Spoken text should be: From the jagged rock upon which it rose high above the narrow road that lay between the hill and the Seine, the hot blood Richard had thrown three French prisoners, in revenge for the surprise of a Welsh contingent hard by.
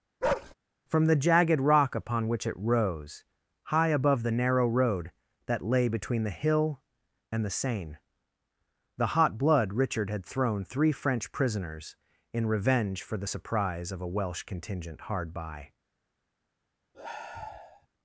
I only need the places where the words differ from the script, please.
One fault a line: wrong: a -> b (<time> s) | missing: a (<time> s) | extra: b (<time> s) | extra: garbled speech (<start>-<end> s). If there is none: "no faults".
no faults